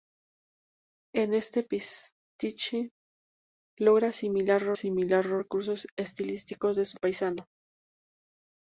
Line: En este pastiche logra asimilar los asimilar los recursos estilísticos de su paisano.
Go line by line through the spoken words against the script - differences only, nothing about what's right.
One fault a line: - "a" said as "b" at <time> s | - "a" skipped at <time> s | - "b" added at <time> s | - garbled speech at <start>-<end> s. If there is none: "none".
none